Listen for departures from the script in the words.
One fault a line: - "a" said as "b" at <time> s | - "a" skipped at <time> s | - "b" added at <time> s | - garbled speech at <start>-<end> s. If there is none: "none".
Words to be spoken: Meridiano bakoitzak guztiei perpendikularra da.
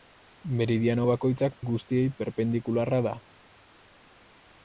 none